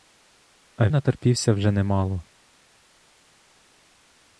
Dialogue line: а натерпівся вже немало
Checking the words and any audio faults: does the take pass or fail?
pass